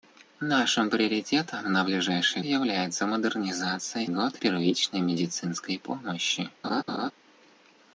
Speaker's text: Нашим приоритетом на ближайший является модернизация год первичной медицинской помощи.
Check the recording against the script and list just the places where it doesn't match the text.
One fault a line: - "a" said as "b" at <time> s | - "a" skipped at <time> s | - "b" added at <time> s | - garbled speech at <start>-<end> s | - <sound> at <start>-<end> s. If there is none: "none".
- laugh at 6.6-7.1 s